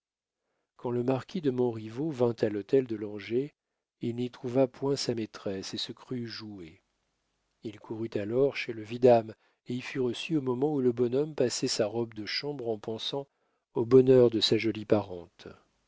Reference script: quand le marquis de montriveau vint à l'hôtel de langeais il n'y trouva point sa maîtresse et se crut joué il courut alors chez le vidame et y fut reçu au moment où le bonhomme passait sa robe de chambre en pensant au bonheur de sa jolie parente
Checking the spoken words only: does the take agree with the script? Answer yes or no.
yes